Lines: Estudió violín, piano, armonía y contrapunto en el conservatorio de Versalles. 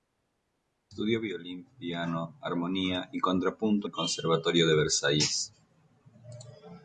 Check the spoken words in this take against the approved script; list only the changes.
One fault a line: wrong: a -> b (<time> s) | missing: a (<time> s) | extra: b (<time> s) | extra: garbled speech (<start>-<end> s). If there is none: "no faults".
missing: en (3.9 s)